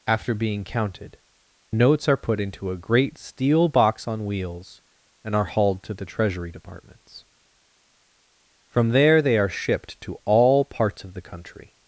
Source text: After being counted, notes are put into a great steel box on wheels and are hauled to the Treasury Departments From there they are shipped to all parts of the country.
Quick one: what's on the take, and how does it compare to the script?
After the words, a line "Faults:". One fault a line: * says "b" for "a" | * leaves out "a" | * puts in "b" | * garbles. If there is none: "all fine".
After being counted, notes are put into a great steel box on wheels and are hauled to the Treasury Departments From there they are shipped to all parts of the country.
Faults:
all fine